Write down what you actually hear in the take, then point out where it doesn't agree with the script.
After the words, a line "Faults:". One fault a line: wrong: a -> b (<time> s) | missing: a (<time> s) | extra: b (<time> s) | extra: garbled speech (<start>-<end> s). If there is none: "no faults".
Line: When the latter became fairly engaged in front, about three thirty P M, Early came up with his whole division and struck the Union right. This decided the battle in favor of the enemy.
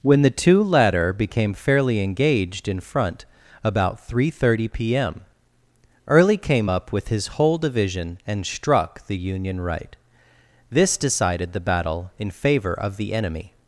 When the two latter became fairly engaged in front, about three thirty P M, Early came up with his whole division and struck the Union right. This decided the battle in favor of the enemy.
Faults:
extra: two (0.3 s)